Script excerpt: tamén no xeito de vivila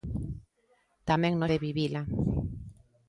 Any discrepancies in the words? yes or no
yes